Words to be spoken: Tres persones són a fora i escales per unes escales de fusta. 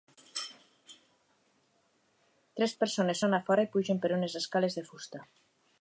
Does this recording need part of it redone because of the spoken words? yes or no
yes